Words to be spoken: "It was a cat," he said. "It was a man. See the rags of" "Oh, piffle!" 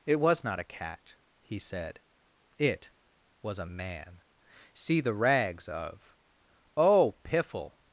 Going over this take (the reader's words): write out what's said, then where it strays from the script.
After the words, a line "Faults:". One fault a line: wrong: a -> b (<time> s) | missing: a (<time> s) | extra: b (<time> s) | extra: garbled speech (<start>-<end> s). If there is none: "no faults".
"It was not a cat," he said. "It was a man. See the rags of" "Oh, piffle!"
Faults:
extra: not (0.4 s)